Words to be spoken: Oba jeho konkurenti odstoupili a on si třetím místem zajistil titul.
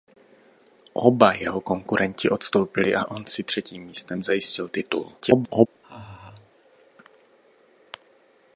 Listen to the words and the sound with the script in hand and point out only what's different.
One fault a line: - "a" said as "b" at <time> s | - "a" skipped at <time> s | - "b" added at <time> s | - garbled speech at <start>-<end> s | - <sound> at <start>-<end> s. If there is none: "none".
- garbled speech at 5.2-5.7 s
- laugh at 5.8-6.5 s